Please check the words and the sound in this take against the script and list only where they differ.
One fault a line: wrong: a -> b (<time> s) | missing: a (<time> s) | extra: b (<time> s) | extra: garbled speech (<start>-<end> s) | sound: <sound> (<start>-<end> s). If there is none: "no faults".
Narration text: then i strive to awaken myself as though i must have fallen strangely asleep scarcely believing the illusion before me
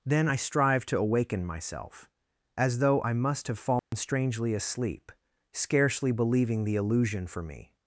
sound: dropout (3.8-3.9 s)
wrong: before -> for (7.3 s)